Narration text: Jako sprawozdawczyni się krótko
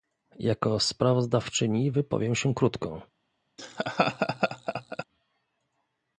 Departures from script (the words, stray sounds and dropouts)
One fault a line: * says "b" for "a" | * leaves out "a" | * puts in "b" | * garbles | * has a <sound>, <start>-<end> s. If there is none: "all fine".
* puts in "wypowiem"
* has a laugh, 3.6-5.0 s